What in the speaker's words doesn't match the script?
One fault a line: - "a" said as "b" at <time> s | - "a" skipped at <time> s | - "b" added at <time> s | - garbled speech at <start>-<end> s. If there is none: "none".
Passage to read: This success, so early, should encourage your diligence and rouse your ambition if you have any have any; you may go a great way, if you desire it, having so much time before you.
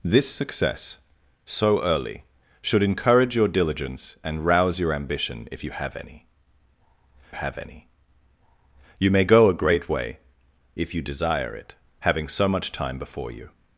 none